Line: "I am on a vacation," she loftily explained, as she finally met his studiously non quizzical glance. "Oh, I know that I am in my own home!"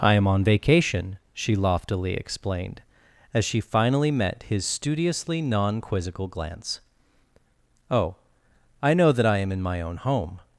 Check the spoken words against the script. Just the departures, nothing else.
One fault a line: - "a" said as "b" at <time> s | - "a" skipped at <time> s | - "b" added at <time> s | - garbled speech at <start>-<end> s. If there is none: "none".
- "a" skipped at 0.4 s